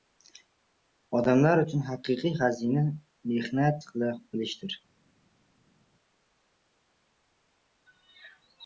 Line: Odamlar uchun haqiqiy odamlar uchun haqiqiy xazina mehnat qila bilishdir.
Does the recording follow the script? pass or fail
fail